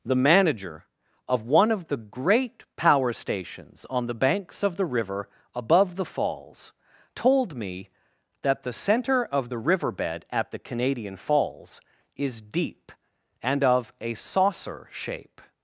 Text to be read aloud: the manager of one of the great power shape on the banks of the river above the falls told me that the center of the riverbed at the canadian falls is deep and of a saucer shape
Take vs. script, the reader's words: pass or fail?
fail